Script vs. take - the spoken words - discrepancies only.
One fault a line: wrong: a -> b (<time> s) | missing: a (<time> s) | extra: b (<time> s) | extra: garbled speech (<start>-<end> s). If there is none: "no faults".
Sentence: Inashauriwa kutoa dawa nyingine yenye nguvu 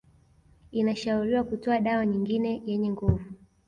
no faults